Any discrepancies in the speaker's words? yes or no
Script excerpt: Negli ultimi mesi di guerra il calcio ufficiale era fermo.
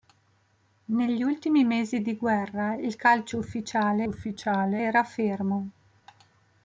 yes